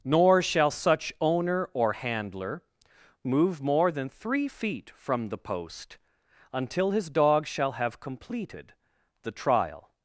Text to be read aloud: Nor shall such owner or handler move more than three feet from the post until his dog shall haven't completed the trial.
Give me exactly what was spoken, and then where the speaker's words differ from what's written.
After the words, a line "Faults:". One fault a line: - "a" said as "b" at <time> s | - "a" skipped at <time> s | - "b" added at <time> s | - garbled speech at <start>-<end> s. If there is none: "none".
Nor shall such owner or handler move more than three feet from the post until his dog shall have completed the trial.
Faults:
- "haven't" said as "have" at 7.7 s